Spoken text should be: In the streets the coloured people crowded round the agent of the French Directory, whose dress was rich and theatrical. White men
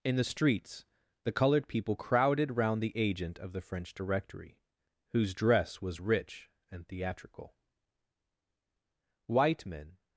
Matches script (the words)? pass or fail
pass